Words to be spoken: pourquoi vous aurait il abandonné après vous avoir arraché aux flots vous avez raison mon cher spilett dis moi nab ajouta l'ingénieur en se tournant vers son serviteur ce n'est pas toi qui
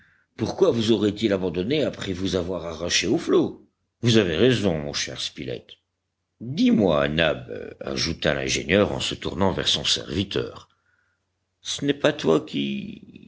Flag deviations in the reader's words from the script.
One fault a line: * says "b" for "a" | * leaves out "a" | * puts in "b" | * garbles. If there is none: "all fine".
all fine